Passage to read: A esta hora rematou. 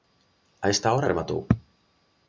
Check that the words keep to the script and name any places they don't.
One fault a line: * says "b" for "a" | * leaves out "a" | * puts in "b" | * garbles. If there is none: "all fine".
all fine